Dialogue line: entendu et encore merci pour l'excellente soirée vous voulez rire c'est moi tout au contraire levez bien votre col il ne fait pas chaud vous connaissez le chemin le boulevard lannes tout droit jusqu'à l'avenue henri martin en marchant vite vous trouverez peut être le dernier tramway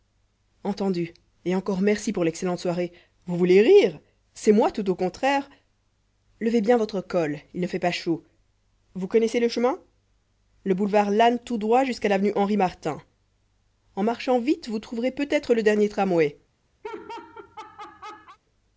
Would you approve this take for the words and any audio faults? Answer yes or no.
no